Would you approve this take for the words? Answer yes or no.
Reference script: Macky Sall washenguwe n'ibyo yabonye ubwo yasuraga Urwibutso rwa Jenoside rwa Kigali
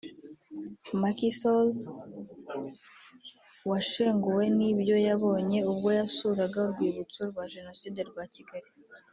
yes